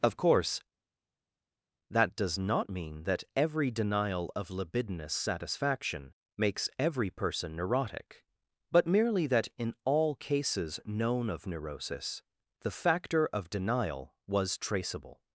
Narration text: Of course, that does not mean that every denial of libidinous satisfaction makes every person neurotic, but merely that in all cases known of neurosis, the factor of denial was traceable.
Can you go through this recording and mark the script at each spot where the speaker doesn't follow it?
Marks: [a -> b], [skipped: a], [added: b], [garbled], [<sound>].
Of course, that does not mean that every denial of libidinous satisfaction makes every person neurotic, but merely that in all cases known of neurosis, the factor of denial was traceable.